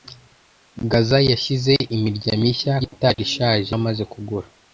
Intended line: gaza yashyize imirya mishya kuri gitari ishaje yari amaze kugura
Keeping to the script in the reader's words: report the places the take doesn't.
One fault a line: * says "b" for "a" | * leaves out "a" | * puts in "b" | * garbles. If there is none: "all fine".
* leaves out "kuri"
* leaves out "yari"